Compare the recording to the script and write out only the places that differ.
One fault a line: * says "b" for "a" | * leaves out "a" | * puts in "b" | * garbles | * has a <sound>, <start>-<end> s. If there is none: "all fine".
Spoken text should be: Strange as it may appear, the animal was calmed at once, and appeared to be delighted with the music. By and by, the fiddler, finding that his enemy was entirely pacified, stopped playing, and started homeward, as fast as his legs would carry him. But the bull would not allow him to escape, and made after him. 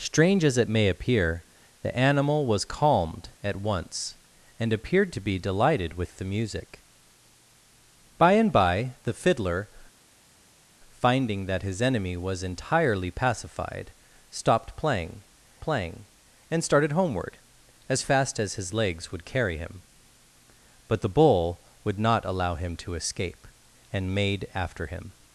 * puts in "playing"